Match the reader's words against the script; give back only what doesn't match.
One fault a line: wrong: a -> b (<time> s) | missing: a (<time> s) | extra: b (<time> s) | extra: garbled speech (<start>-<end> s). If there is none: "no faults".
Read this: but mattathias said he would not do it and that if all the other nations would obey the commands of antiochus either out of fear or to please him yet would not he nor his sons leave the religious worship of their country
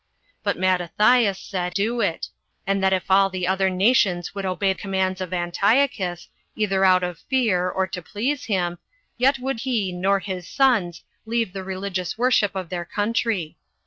missing: he would not (1.8 s)
missing: the (4.7 s)
missing: not (9.6 s)